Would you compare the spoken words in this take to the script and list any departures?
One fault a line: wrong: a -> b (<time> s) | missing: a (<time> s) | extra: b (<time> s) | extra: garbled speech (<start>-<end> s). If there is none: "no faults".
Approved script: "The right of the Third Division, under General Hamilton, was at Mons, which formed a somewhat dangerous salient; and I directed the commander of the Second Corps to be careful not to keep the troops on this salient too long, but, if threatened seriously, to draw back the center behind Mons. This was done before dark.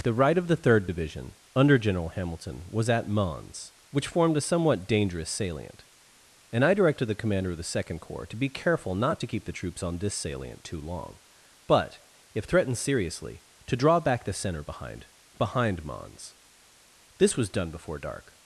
extra: behind (15.4 s)